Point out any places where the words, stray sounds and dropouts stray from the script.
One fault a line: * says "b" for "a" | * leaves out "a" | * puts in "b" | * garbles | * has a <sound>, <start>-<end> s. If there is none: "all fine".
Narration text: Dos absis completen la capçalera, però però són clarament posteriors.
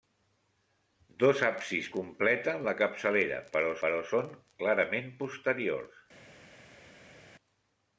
all fine